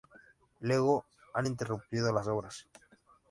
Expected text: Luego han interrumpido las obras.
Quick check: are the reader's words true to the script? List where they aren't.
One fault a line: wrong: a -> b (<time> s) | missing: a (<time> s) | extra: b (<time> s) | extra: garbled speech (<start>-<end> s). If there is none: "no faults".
no faults